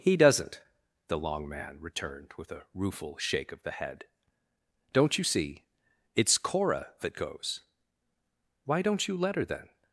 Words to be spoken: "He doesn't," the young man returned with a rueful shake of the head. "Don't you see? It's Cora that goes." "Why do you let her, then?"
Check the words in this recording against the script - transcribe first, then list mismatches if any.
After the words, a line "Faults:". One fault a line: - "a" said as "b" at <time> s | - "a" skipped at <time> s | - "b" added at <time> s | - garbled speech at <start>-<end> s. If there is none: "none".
"He doesn't," the long man returned with a rueful shake of the head. "Don't you see? It's Cora that goes." "Why don't you let her, then?"
Faults:
- "young" said as "long" at 1.2 s
- "do" said as "don't" at 8.8 s